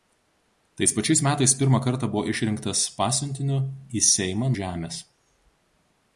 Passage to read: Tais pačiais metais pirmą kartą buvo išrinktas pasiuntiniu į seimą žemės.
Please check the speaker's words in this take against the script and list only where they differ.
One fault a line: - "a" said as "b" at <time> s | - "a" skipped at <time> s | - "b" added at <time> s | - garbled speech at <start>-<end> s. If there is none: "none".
none